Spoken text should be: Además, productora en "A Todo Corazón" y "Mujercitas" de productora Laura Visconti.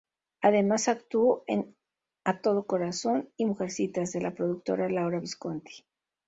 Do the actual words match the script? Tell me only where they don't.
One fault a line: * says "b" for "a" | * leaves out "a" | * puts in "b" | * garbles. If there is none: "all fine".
* says "actuó" for "productora"
* puts in "la"